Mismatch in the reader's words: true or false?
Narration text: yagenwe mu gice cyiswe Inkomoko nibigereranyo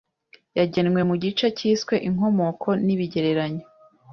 false